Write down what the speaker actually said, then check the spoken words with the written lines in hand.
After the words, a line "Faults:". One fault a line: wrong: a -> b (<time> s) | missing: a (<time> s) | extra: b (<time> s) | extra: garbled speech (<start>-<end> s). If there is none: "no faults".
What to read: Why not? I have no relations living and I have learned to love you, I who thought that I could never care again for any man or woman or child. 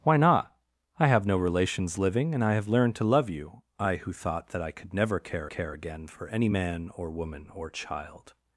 Why not? I have no relations living and I have learned to love you, I who thought that I could never care care again for any man or woman or child.
Faults:
extra: care (5.4 s)